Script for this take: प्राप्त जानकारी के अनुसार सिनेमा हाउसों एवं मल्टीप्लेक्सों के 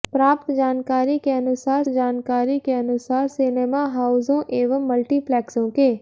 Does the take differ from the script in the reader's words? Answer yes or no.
yes